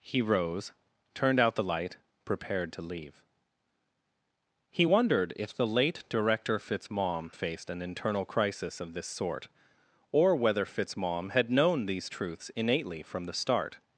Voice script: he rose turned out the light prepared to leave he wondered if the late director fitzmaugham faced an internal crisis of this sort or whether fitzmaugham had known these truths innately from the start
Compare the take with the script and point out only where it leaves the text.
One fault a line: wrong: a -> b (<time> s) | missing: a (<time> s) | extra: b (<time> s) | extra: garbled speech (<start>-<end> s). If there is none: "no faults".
no faults